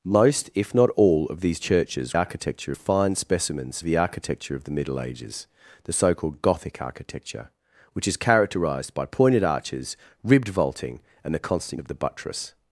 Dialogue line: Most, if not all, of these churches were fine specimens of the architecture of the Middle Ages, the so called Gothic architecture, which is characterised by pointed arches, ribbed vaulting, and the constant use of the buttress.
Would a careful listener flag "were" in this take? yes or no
yes